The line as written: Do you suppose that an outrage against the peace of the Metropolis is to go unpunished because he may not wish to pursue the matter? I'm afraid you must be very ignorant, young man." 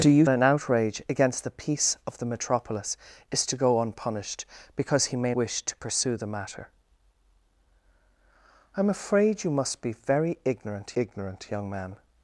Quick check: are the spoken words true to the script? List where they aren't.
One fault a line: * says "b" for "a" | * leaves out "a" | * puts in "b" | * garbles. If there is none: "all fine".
* leaves out "suppose that"
* leaves out "not"
* puts in "ignorant"